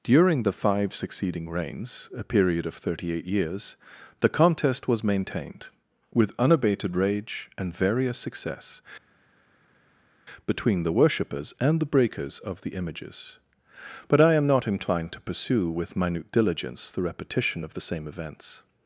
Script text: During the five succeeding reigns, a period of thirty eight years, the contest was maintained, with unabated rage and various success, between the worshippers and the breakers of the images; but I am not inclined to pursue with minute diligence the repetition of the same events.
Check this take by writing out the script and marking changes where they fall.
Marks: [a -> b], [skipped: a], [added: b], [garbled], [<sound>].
During the five succeeding reigns, a period of thirty eight years, the contest was maintained, with unabated rage and various success, between the worshippers and the breakers of the images; but I am not inclined to pursue with minute diligence the repetition of the same events.